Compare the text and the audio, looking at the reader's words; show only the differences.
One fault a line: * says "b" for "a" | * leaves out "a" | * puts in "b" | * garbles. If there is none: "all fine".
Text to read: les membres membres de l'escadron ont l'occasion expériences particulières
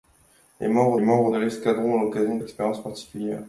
all fine